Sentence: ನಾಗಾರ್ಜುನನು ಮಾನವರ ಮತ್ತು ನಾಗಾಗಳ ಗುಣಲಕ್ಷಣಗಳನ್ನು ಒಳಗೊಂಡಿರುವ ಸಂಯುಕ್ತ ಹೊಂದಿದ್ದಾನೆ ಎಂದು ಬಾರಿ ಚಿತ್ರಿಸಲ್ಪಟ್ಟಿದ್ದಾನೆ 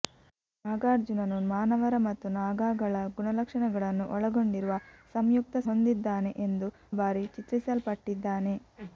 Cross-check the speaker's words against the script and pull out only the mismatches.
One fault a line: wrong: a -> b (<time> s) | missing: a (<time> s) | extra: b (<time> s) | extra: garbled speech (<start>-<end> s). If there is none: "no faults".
no faults